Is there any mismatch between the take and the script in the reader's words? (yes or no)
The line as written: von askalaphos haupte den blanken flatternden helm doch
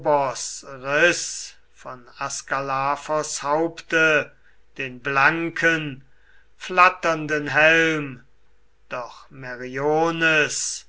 no